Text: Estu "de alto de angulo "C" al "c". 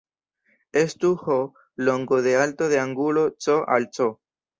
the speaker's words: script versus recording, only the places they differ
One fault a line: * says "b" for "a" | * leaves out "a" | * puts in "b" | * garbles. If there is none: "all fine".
* puts in "h longo"